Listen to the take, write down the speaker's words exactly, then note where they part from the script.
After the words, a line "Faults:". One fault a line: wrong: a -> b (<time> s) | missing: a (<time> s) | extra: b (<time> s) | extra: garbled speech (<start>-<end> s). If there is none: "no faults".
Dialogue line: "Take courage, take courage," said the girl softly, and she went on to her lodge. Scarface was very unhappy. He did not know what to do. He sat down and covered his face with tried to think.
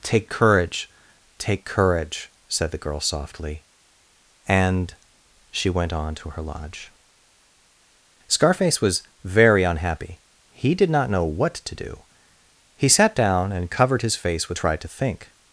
"Take courage, take courage," said the girl softly, and she went on to her lodge. Scarface was very unhappy. He did not know what to do. He sat down and covered his face with tried to think.
Faults:
no faults